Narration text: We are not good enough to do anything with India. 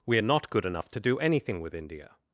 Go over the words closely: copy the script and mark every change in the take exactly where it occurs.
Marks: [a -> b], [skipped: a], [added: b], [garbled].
We are not good enough to do anything with India.